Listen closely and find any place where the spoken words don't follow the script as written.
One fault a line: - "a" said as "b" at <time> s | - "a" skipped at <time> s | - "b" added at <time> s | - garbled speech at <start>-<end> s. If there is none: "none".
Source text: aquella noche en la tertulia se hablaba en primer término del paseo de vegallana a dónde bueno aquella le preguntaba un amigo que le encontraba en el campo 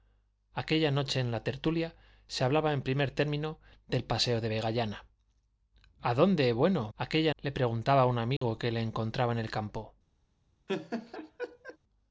none